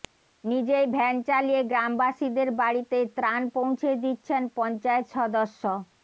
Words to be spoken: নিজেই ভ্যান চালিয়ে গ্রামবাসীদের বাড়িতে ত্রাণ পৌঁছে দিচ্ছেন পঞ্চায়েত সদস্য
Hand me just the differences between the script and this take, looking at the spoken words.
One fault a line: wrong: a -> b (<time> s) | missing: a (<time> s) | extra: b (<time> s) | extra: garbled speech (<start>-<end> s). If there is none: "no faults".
no faults